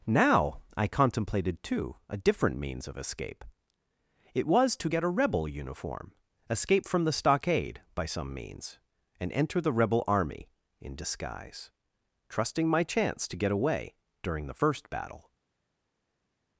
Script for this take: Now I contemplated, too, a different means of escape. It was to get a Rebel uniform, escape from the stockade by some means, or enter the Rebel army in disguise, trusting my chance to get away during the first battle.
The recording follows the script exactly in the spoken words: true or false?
false